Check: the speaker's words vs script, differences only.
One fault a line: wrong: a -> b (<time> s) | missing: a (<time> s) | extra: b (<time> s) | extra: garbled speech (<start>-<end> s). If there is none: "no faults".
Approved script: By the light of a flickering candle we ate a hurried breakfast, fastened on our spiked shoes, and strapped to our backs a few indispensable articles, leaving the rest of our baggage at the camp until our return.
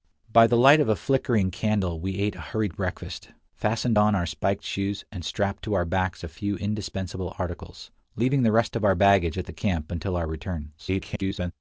extra: garbled speech (10.8-11.5 s)